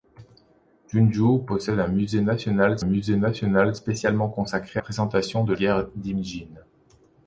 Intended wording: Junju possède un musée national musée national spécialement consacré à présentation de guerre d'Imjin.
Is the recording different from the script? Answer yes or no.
no